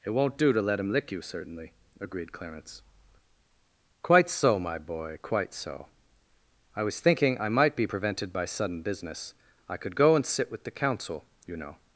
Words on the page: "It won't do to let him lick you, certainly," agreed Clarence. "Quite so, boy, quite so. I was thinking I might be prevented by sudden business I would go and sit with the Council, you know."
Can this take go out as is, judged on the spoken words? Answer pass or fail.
fail